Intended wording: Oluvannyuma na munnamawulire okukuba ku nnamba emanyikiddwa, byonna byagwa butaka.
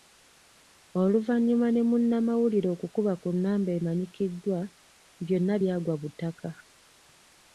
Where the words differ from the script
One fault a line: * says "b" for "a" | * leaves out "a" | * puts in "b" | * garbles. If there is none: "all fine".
* says "ne" for "na"